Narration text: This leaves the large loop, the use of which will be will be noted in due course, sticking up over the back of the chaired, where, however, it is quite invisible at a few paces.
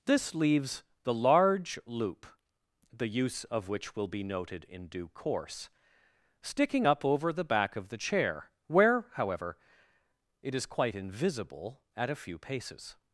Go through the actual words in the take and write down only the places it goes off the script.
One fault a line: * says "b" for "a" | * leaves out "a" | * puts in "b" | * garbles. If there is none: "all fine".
* leaves out "will be"
* says "chair" for "chaired"